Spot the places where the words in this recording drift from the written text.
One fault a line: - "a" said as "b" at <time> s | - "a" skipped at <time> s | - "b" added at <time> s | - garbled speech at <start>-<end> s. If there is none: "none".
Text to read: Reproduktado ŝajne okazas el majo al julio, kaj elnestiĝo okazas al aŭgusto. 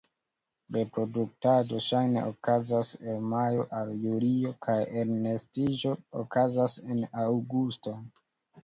- "al" said as "en" at 6.9 s